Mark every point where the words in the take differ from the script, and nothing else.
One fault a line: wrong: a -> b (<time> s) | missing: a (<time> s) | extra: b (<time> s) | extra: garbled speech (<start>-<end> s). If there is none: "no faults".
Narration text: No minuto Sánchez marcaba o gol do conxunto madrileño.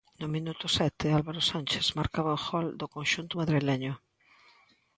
extra: sete Álvaro (0.8 s)